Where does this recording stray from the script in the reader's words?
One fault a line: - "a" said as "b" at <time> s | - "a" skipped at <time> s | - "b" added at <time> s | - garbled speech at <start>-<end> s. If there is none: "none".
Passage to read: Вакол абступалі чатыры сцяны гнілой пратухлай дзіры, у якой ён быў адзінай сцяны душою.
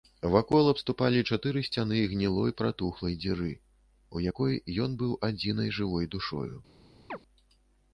- "сцяны" said as "жывой" at 5.8 s